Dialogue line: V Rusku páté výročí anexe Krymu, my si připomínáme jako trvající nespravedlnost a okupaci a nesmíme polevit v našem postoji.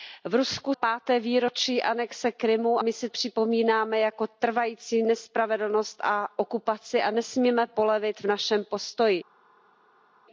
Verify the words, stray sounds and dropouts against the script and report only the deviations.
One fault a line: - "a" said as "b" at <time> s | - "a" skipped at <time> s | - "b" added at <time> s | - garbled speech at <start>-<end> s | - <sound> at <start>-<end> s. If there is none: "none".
none